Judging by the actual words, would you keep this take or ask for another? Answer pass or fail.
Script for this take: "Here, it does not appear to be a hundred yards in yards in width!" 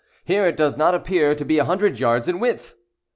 fail